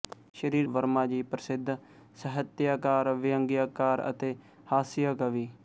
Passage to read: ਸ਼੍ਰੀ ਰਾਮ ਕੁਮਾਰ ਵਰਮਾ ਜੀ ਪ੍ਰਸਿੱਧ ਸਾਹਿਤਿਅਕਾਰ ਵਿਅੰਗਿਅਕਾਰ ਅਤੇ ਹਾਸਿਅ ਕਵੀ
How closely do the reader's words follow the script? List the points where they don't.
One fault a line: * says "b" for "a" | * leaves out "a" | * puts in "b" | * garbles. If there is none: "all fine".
* leaves out "ਰਾਮ ਕੁਮਾਰ"